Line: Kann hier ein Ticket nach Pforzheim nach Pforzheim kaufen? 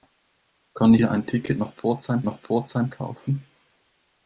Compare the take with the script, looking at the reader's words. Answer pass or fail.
pass